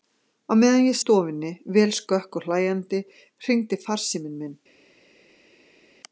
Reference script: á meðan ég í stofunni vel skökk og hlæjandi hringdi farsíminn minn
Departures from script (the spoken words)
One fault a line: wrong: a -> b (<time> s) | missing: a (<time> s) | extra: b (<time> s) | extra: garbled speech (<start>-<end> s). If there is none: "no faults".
no faults